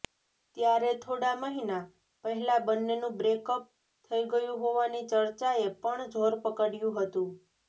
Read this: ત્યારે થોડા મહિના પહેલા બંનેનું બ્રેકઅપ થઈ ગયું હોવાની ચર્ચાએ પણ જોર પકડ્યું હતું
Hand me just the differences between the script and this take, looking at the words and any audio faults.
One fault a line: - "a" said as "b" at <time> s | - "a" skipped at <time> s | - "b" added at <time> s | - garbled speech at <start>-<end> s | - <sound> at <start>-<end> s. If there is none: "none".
none